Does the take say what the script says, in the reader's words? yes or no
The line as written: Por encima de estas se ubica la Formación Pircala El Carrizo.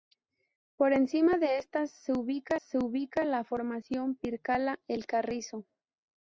no